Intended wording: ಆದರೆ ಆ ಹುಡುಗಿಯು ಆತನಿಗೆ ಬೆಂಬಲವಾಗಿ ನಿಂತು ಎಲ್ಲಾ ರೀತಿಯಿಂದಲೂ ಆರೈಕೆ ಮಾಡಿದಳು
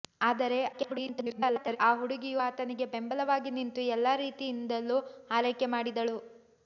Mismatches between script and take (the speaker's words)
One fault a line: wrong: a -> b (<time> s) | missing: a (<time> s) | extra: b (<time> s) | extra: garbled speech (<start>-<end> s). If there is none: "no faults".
extra: garbled speech (0.7-1.8 s)